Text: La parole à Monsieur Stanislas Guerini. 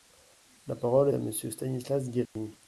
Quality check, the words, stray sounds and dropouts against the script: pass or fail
fail